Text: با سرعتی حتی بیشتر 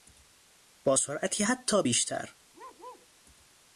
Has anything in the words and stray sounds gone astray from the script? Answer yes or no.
yes